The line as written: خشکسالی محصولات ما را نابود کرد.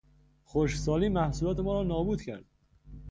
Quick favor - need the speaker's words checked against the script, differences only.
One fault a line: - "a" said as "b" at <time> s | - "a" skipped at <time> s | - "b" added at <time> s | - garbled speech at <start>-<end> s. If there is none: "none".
none